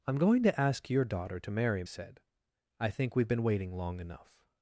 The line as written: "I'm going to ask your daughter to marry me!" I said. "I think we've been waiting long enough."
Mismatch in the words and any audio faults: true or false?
true